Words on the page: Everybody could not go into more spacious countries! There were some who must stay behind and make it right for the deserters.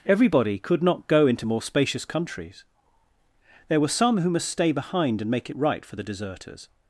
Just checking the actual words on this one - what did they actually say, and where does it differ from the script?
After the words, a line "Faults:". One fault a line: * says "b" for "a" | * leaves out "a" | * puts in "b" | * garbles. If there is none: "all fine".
Everybody could not go into more spacious countries! There were some who must stay behind and make it right for the deserters.
Faults:
all fine